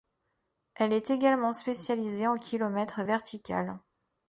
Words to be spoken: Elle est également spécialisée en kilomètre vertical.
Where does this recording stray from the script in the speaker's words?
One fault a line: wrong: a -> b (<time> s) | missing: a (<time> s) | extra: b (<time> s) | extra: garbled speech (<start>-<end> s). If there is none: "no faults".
no faults